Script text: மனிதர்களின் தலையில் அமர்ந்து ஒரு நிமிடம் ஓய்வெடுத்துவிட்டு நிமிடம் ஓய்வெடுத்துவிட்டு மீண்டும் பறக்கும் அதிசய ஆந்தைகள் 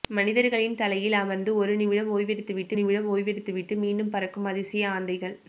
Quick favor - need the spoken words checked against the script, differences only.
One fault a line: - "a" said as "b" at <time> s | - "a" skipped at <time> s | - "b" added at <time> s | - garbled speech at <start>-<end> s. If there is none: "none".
none